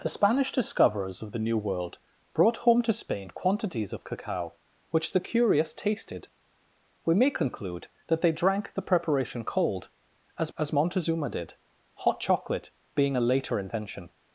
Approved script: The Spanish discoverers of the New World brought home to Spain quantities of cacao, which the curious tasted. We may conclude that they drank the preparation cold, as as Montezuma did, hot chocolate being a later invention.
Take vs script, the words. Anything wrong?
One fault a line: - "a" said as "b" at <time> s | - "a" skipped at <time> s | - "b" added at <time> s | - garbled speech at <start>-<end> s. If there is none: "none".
none